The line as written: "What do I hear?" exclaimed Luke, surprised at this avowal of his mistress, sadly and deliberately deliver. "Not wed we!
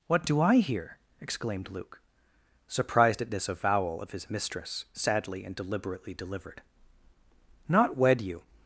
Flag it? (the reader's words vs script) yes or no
yes